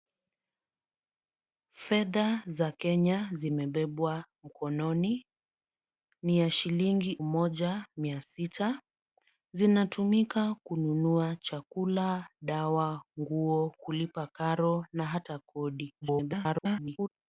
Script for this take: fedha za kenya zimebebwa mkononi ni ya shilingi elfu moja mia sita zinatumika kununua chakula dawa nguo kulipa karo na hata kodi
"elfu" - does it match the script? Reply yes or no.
no